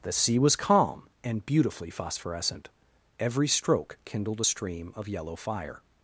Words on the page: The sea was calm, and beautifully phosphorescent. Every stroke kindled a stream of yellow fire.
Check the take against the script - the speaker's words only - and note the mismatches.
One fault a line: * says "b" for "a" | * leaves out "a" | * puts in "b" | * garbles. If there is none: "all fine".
all fine